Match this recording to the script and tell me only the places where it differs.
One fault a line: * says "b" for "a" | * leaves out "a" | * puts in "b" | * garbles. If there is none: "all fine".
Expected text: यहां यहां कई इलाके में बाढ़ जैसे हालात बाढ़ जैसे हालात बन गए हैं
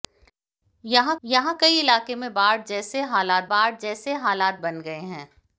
all fine